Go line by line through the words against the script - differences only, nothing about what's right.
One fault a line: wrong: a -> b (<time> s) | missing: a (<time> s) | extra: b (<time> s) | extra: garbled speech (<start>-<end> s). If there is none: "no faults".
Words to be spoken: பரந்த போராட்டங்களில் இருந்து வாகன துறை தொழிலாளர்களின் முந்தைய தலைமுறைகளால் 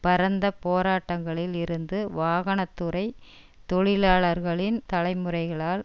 missing: முந்தைய (4.8 s)